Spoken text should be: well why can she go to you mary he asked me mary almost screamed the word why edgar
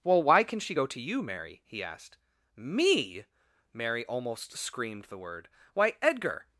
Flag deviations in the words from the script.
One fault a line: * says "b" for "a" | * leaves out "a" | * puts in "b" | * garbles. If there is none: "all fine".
all fine